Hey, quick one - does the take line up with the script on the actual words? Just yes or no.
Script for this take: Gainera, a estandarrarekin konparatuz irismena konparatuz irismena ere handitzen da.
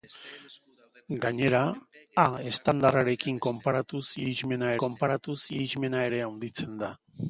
yes